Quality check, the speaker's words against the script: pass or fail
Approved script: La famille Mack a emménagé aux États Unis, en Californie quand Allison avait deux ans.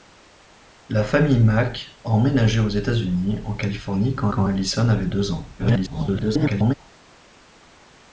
fail